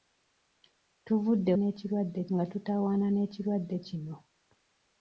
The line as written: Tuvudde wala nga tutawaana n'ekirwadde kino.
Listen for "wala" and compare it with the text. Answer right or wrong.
wrong